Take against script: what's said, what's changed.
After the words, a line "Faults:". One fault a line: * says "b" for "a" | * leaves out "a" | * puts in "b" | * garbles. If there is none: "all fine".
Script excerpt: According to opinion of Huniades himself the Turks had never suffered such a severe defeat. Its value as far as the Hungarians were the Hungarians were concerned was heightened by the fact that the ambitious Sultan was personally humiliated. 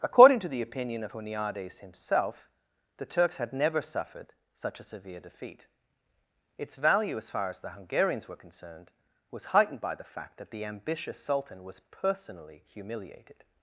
According to the opinion of Huniades himself the Turks had never suffered such a severe defeat. Its value as far as the Hungarians were concerned was heightened by the fact that the ambitious Sultan was personally humiliated.
Faults:
* puts in "the"
* leaves out "the Hungarians were"